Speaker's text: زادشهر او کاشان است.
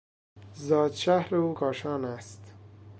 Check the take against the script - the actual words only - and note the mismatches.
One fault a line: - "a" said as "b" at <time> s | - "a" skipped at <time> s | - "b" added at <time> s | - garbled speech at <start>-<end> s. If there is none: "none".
none